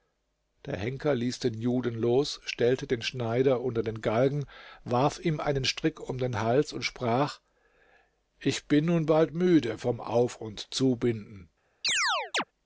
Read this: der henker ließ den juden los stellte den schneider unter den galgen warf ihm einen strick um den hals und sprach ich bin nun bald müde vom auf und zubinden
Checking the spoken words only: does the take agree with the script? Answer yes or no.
yes